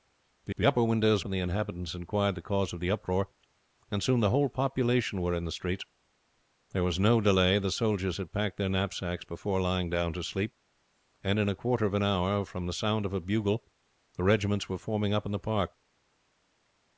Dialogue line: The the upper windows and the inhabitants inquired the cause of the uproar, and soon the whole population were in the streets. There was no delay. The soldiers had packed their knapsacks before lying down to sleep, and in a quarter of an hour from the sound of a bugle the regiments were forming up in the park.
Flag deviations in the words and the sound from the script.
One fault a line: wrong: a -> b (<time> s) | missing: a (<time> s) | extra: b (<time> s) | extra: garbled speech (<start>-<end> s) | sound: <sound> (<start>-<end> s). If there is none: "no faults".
no faults